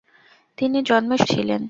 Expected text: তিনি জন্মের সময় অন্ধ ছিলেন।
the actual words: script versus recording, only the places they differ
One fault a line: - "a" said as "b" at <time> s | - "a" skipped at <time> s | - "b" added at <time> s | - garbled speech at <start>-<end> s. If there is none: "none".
- "সময় অন্ধ" skipped at 1.2 s